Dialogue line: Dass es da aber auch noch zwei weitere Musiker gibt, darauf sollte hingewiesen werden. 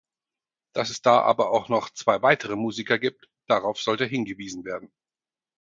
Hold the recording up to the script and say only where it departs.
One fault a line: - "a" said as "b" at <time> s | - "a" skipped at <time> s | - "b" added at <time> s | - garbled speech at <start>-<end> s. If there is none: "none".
none